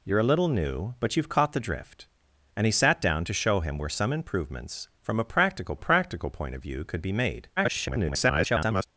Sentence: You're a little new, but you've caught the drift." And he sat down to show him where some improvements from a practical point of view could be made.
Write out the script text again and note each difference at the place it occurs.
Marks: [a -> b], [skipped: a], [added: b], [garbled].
You're a little new, but you've caught the drift." And he sat down to show him where some improvements from a practical [added: practical] point of view could be made. [garbled]